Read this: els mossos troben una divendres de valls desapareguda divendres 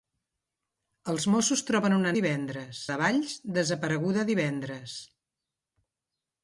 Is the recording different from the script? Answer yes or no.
no